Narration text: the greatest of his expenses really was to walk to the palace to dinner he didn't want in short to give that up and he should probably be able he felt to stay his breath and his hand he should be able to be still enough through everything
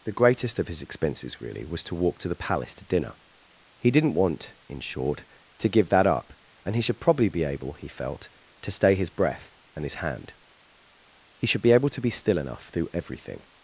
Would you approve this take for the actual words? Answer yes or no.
yes